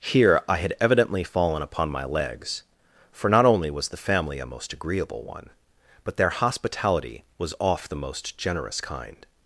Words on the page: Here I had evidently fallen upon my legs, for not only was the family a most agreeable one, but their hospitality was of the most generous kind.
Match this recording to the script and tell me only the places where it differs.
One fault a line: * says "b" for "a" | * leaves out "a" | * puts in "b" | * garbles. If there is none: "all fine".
* says "off" for "of"